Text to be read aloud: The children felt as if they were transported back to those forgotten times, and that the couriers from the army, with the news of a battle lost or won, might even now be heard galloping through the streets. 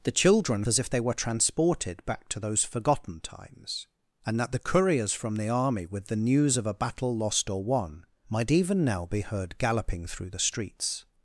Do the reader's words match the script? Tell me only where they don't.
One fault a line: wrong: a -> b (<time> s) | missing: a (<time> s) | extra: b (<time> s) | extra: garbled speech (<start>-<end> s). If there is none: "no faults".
missing: felt (0.7 s)